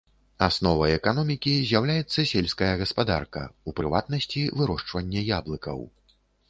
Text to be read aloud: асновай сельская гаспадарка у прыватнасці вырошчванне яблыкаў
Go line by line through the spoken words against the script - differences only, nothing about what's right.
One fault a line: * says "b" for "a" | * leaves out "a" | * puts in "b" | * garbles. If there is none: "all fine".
* puts in "эканомікі з'яўляецца"